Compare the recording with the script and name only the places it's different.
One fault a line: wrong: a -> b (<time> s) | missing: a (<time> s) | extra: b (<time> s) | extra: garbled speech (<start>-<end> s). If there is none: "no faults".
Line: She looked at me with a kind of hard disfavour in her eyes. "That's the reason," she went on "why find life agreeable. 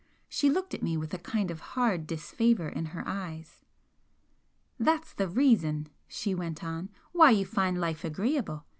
extra: you (7.3 s)